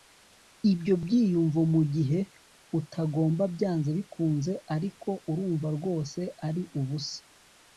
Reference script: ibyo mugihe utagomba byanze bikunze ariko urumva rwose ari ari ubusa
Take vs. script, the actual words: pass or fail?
fail